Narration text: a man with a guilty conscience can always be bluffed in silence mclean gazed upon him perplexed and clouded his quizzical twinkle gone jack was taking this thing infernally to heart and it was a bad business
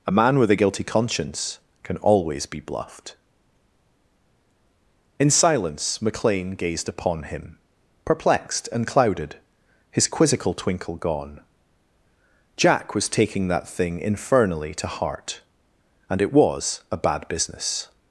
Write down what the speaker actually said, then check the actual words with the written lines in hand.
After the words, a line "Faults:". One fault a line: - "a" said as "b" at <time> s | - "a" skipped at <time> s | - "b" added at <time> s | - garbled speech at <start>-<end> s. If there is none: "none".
a man with a guilty conscience can always be bluffed in silence mclean gazed upon him perplexed and clouded his quizzical twinkle gone jack was taking that thing infernally to heart and it was a bad business
Faults:
- "this" said as "that" at 13.5 s